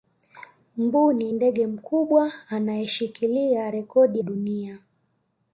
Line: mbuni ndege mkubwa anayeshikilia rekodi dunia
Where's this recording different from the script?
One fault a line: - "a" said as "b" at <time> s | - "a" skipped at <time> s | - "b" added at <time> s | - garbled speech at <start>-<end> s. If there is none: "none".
none